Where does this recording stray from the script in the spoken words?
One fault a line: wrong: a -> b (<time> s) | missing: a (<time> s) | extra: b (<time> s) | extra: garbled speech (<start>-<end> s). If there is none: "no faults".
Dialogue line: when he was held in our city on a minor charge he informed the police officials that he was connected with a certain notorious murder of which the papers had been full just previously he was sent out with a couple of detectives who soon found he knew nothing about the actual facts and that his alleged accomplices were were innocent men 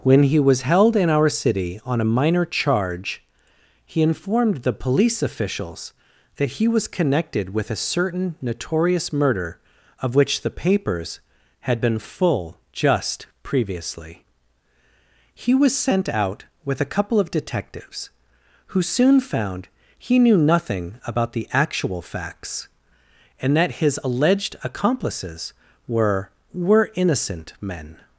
no faults